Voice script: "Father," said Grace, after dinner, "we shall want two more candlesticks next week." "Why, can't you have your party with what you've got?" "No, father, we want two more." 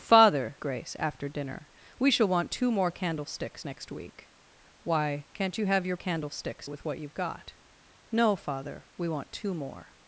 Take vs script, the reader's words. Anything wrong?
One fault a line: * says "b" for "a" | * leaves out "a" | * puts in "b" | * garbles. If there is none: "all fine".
* leaves out "said"
* says "candlesticks" for "party"